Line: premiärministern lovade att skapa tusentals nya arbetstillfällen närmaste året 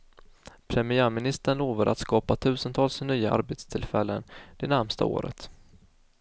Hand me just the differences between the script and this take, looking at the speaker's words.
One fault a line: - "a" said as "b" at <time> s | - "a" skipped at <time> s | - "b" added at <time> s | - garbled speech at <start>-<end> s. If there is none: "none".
- "det" added at 4.6 s